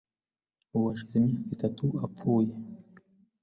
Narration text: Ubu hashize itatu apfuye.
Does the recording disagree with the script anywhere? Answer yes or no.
yes